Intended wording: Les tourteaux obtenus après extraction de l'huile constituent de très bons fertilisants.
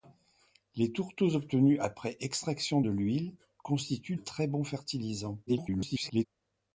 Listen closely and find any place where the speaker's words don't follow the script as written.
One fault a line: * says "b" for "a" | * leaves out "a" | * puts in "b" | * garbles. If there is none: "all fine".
* leaves out "de"
* garbles